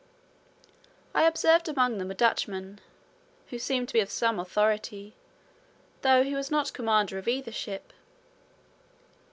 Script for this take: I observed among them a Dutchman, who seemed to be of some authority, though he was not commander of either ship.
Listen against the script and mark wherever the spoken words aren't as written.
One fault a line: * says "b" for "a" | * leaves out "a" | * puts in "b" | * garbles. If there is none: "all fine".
all fine